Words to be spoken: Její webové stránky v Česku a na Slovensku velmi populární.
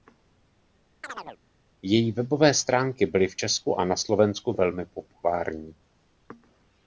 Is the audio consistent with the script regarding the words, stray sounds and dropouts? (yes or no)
no